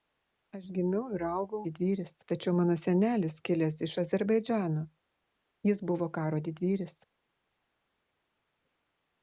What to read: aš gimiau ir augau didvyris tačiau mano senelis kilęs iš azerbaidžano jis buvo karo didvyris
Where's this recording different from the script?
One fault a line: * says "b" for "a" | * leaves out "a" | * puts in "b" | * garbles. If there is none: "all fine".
all fine